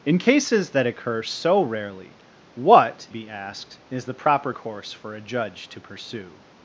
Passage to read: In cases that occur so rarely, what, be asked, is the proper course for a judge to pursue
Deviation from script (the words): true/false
false